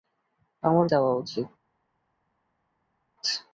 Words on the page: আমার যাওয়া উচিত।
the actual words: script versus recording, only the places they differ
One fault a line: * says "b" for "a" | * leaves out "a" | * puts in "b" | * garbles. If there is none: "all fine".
all fine